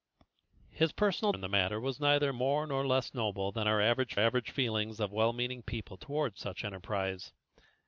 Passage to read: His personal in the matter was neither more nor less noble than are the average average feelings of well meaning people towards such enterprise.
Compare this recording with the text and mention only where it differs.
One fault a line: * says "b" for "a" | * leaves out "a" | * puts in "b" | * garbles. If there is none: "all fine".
all fine